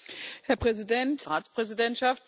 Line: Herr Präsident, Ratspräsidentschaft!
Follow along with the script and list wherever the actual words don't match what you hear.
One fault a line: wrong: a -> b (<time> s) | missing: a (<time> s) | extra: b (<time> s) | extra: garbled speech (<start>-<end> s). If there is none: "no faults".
no faults